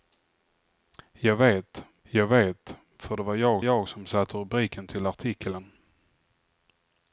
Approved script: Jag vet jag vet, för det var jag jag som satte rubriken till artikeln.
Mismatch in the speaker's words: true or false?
false